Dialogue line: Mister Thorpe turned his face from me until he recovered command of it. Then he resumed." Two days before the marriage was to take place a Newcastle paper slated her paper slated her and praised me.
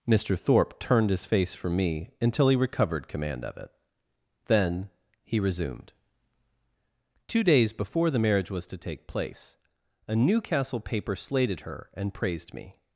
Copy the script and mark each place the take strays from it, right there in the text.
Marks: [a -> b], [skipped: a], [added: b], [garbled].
Mister Thorpe turned his face from me until he recovered command of it. Then he resumed." Two days before the marriage was to take place a Newcastle paper slated her [skipped: paper slated her] and praised me.